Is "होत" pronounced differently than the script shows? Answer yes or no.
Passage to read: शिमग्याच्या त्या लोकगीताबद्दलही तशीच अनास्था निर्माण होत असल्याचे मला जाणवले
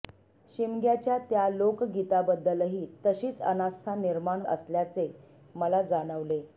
yes